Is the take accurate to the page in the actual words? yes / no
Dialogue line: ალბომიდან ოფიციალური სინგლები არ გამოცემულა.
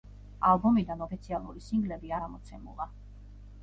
no